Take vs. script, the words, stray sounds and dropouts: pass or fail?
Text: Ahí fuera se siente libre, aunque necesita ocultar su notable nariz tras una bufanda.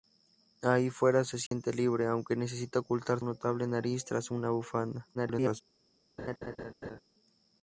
fail